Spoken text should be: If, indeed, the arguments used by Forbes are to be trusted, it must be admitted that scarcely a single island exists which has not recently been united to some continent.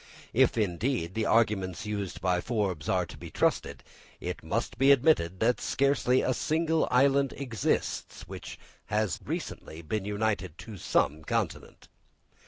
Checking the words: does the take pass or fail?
fail